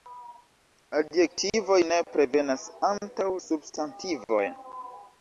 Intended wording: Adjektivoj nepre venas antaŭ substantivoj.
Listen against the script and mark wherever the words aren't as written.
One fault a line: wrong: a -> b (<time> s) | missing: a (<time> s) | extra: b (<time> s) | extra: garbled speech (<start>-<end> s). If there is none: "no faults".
no faults